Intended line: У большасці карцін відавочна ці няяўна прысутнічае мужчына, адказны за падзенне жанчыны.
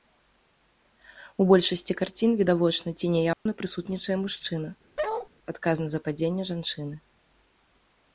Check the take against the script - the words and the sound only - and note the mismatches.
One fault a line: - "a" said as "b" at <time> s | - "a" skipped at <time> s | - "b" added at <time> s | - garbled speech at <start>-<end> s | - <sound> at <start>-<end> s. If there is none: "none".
- dropout at 3.3-3.5 s
- bark at 5.0-5.3 s